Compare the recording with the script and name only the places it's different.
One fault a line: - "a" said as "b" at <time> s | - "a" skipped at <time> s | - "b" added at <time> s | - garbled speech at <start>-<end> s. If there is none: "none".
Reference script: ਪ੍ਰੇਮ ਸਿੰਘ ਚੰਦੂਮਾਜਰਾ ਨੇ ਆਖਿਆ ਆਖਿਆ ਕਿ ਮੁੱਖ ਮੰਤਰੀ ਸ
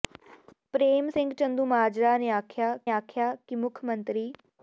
none